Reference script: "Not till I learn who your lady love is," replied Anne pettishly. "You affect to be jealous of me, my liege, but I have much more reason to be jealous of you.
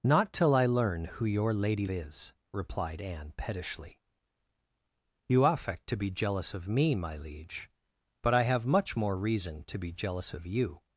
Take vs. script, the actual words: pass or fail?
fail